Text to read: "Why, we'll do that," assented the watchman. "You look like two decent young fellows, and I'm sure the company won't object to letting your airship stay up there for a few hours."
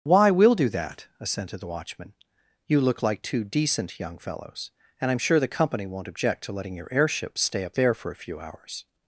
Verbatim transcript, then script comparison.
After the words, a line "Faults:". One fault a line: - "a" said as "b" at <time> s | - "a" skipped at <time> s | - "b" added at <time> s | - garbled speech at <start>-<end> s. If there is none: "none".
"Why, we'll do that," assented the watchman. "You look like two decent young fellows, and I'm sure the company won't object to letting your airship stay up there for a few hours."
Faults:
none